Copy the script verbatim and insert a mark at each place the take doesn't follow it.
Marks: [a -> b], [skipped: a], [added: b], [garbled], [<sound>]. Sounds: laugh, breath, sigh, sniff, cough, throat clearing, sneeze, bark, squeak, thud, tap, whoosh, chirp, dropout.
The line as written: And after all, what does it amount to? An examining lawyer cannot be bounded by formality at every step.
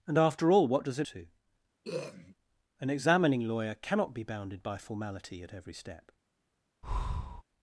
And after all, what does it [skipped: amount] to? [throat clearing] An examining lawyer cannot be bounded by formality at every step. [breath]